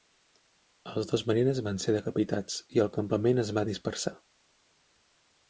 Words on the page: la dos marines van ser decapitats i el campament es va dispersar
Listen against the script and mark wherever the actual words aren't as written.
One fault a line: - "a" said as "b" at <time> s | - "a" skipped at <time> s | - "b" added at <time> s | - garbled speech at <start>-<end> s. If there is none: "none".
- "la" said as "els" at 0.9 s